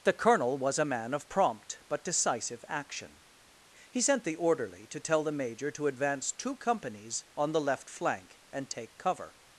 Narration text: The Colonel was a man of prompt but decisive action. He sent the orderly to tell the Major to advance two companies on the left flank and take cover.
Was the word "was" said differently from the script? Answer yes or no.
no